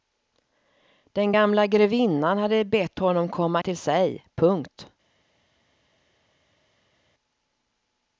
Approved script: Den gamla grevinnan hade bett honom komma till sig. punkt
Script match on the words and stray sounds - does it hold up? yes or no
yes